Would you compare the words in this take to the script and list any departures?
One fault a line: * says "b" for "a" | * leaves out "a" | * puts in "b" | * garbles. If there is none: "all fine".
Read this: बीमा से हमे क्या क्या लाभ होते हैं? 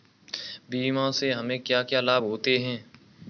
all fine